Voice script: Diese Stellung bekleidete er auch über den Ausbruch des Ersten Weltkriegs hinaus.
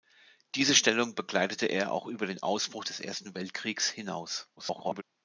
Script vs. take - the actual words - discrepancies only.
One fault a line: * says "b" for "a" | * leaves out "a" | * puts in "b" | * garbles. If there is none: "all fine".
* garbles